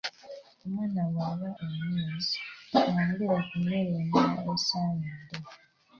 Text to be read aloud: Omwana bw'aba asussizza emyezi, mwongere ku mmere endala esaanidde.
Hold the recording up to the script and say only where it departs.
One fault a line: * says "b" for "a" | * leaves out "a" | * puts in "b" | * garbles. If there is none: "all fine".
* leaves out "asussizza"